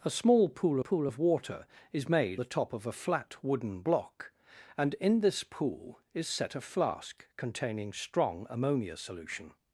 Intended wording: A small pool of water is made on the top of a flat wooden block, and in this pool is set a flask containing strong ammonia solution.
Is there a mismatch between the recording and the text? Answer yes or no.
yes